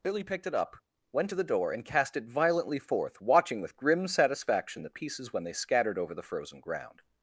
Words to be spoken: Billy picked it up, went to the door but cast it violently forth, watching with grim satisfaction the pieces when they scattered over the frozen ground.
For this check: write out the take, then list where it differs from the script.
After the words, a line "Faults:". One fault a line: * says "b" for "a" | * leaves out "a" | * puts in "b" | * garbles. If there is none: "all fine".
Billy picked it up, went to the door and cast it violently forth, watching with grim satisfaction the pieces when they scattered over the frozen ground.
Faults:
* says "and" for "but"